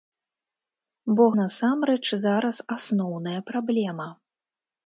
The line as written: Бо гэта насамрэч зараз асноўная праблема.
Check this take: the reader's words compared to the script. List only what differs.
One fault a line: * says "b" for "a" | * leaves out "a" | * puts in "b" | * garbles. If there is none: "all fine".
* leaves out "гэта"